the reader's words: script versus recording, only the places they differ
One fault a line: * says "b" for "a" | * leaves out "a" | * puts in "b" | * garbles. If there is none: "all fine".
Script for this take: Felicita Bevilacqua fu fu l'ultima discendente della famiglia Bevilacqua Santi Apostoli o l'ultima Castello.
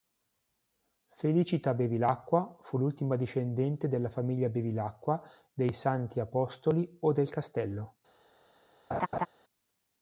* leaves out "fu"
* puts in "dei"
* says "del" for "l'ultima"